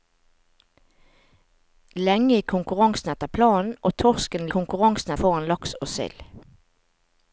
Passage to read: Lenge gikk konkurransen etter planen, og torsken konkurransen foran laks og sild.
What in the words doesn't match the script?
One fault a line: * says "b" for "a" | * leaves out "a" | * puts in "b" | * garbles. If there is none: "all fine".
all fine